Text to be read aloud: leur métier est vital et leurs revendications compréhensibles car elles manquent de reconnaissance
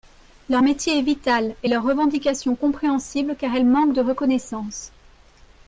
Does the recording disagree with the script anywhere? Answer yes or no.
no